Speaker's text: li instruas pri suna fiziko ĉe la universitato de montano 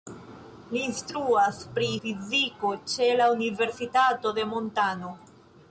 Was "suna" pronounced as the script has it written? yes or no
no